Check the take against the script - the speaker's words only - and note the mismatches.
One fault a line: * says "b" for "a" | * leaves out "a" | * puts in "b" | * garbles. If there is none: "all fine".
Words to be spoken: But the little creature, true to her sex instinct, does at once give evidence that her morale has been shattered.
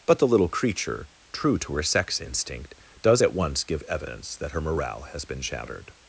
all fine